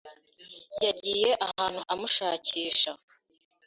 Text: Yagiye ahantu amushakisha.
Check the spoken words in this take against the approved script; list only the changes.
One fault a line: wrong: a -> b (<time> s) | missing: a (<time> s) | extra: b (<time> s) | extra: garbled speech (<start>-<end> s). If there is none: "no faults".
no faults